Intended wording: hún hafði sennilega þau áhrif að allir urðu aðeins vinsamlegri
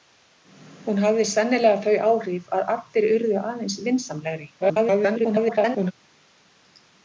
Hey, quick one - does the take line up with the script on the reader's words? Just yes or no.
no